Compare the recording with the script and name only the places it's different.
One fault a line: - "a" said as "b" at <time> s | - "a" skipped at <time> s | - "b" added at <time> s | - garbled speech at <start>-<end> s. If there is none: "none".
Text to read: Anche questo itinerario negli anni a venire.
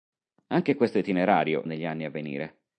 none